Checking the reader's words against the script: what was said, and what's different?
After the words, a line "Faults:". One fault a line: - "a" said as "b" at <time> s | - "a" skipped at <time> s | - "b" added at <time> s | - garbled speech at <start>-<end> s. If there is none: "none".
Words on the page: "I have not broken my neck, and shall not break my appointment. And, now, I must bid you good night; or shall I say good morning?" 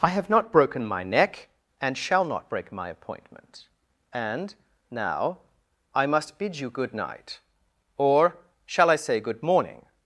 "I have not broken my neck, and shall not break my appointment. And, now, I must bid you good night; or shall I say good morning?"
Faults:
none